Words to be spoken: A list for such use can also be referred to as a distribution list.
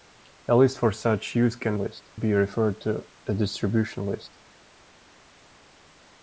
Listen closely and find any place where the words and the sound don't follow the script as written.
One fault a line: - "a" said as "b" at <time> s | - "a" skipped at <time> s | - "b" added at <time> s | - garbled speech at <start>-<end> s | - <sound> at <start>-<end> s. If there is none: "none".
- "also" said as "list" at 1.8 s
- "as" skipped at 3.1 s